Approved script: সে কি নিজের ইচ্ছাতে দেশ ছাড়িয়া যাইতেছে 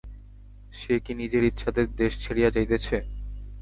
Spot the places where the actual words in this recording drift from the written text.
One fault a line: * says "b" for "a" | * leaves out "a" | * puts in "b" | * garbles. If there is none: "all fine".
all fine